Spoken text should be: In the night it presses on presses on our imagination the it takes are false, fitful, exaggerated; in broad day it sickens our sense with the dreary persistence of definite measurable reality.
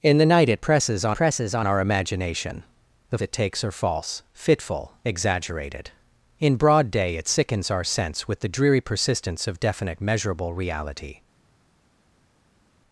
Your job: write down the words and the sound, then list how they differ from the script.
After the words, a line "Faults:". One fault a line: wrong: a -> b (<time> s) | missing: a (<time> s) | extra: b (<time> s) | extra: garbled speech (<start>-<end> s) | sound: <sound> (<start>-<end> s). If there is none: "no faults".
In the night it presses on presses on our imagination the it takes are false, fitful, exaggerated; in broad day it sickens our sense with the dreary persistence of definite measurable reality.
Faults:
no faults